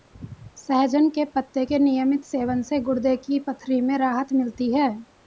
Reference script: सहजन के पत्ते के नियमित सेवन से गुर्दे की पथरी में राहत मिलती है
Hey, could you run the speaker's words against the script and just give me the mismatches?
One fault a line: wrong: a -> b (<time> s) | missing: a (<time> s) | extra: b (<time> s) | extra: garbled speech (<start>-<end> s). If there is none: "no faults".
no faults